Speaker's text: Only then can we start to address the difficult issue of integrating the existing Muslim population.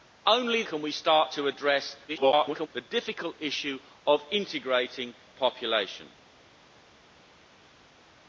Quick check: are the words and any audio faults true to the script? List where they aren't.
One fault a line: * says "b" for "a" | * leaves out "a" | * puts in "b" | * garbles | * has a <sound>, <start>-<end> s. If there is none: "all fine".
* leaves out "then"
* garbles
* leaves out "the existing Muslim"